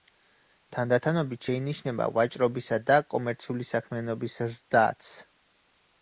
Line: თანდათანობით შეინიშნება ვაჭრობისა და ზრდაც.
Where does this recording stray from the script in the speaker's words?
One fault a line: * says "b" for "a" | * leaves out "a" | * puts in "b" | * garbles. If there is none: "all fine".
* puts in "კომერციული საქმიანობის"